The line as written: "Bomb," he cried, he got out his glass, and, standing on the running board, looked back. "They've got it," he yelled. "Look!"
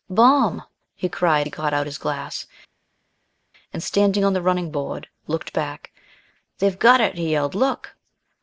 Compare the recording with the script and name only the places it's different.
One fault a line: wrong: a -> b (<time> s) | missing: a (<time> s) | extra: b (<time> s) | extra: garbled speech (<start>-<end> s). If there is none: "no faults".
no faults